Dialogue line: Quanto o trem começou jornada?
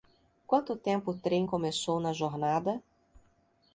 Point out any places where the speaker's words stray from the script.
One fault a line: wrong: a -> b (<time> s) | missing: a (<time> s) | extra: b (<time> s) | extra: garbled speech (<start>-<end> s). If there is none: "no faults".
extra: tempo (0.8 s)
extra: na (2.0 s)